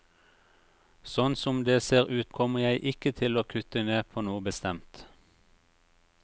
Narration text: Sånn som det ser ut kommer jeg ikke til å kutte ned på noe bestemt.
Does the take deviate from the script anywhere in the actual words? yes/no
no